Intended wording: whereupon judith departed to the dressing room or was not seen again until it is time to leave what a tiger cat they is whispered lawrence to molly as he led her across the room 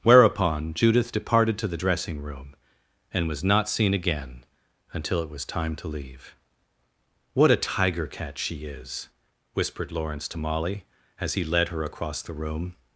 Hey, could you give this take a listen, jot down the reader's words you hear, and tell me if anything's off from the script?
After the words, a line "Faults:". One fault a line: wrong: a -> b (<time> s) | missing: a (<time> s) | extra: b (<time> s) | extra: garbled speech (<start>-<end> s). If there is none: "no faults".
whereupon judith departed to the dressing room and was not seen again until it was time to leave what a tiger cat she is whispered lawrence to molly as he led her across the room
Faults:
wrong: or -> and (3.1 s)
wrong: is -> was (5.3 s)
wrong: they -> she (8.4 s)